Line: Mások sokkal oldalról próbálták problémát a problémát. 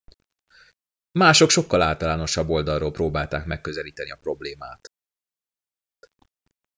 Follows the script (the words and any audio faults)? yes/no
no